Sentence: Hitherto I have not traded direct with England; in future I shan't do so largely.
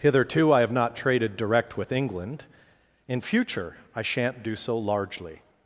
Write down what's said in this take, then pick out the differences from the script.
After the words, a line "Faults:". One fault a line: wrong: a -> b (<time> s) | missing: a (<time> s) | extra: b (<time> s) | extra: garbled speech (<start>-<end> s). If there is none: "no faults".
Hitherto I have not traded direct with England; in future I shan't do so largely.
Faults:
no faults